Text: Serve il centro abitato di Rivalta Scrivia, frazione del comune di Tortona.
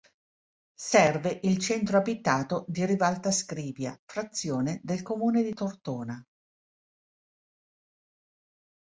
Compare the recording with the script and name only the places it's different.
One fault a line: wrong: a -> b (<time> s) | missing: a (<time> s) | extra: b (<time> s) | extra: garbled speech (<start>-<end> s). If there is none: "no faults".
no faults